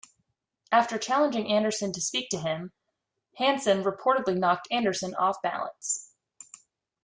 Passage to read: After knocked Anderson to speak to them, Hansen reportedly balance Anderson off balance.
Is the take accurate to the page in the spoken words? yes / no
no